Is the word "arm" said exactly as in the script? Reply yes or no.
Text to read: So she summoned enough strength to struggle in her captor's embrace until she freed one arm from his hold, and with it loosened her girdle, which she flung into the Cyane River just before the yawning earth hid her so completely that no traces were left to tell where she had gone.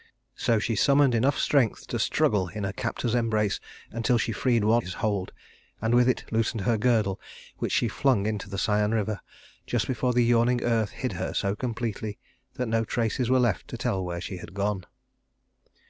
no